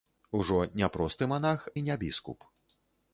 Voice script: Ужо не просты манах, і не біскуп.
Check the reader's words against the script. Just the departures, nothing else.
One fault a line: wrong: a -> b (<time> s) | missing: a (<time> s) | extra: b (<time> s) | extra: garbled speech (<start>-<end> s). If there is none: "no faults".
no faults